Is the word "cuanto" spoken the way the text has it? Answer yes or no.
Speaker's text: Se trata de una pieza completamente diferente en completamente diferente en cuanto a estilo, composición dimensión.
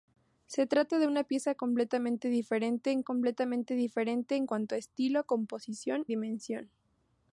yes